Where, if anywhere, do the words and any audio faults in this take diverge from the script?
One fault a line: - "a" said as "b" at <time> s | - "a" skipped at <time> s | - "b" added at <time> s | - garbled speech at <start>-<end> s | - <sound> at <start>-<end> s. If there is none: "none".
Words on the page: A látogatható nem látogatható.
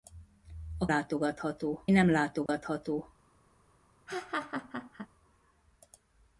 - dropout at 2.5-2.5 s
- laugh at 4.1-5.1 s